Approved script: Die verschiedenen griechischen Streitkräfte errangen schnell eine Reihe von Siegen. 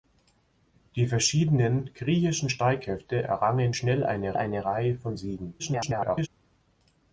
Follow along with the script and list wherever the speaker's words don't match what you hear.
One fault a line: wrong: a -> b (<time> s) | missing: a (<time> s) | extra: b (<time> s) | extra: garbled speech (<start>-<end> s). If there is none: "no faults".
extra: eine (4.4 s)
extra: garbled speech (5.6-6.3 s)